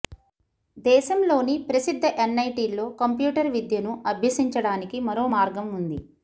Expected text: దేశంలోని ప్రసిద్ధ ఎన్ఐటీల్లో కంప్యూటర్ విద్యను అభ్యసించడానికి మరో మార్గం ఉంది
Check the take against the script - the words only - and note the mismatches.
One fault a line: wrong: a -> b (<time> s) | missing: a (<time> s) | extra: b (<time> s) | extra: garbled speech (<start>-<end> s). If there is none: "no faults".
no faults